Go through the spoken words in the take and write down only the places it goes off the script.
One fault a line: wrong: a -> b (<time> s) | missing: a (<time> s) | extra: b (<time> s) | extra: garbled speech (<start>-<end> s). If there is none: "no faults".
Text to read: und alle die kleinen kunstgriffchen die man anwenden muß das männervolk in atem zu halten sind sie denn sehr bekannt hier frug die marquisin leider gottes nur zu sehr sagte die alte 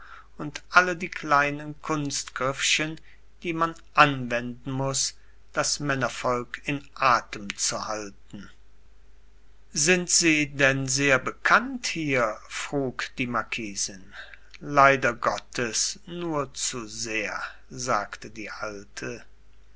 no faults